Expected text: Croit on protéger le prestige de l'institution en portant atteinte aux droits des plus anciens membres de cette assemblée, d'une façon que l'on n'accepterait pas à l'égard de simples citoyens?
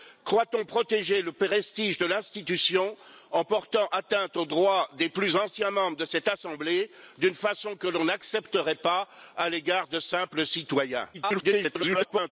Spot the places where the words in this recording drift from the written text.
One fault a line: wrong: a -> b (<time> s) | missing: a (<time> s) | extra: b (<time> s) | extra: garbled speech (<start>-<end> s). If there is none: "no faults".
extra: garbled speech (11.1-12.3 s)